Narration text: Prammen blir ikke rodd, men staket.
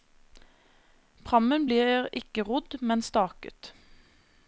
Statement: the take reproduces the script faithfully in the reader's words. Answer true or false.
true